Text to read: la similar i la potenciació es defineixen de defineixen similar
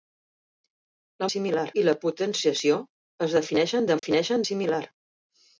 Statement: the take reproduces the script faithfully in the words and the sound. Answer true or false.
false